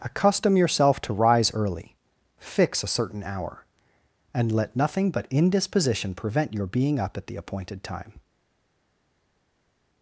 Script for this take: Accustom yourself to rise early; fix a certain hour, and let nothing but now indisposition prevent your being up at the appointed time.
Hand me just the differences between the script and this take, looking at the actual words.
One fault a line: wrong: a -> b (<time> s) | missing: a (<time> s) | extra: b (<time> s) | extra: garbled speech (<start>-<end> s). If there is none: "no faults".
missing: now (5.3 s)